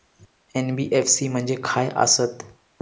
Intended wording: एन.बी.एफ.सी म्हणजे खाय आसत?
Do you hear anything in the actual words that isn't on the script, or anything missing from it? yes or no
no